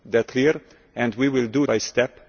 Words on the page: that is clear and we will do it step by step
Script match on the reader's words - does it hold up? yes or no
no